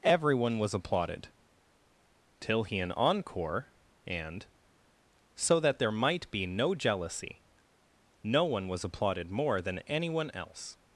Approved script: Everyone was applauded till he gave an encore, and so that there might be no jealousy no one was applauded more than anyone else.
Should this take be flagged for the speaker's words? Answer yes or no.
yes